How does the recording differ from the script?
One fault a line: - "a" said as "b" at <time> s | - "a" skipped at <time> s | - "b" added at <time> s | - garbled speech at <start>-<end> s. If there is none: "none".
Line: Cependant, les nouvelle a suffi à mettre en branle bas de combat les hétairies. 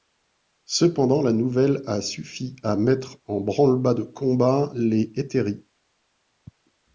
- "les" said as "la" at 1.2 s